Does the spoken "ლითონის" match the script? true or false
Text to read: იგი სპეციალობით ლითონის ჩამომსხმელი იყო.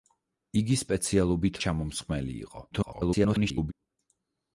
false